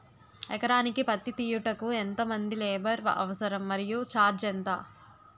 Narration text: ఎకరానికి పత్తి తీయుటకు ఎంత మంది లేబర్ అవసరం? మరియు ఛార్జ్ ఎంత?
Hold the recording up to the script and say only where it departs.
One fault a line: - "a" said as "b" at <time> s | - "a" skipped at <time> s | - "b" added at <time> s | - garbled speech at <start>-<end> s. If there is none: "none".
none